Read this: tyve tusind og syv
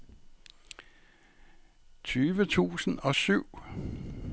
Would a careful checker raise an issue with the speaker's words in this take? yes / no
no